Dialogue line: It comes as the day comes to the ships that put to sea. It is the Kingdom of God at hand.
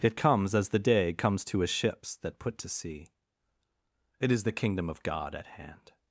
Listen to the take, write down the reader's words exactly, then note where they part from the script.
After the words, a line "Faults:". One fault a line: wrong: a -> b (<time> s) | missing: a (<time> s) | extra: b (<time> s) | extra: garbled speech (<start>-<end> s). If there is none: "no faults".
It comes as the day comes to a ships that put to sea. It is the Kingdom of God at hand.
Faults:
wrong: the -> a (1.6 s)